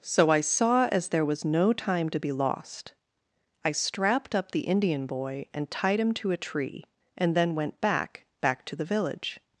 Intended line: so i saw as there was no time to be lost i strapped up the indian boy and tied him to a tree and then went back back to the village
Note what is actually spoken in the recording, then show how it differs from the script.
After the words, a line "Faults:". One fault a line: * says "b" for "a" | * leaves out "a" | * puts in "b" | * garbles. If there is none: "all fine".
so i saw as there was no time to be lost i strapped up the indian boy and tied him to a tree and then went back back to the village
Faults:
all fine